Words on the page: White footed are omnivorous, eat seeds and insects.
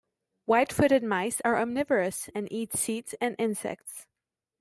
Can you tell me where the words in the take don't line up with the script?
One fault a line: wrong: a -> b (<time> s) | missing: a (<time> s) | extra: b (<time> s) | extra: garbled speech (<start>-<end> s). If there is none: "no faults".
extra: mice (1.0 s)
extra: and (2.3 s)